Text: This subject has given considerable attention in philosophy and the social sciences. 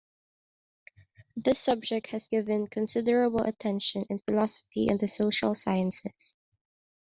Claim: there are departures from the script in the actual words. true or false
false